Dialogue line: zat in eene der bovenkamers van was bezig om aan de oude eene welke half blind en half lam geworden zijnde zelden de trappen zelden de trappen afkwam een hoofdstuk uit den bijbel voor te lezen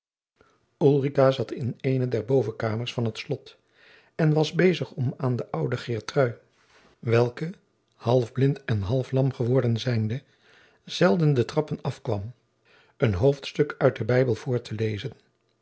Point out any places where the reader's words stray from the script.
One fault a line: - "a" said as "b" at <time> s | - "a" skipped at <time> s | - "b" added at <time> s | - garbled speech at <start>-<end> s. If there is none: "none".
- "het slot en" added at 3.0 s
- "eene" said as "geertrui" at 5.8 s
- "zelden de trappen" skipped at 11.8 s